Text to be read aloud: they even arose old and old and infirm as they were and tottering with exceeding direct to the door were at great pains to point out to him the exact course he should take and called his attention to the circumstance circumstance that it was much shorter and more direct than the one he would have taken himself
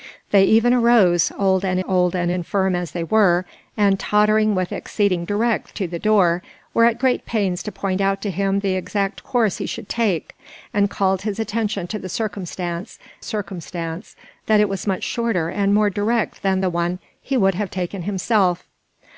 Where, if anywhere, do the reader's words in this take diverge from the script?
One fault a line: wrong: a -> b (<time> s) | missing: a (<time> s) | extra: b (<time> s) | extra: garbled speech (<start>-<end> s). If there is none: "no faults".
no faults